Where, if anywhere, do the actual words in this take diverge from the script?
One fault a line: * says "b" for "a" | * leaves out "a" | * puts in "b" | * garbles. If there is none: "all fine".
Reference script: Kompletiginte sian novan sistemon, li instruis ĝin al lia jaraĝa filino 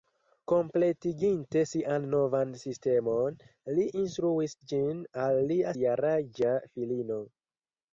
all fine